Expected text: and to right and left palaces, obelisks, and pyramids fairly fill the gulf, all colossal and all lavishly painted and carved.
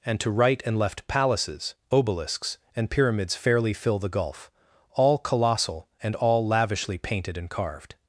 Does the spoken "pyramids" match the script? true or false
true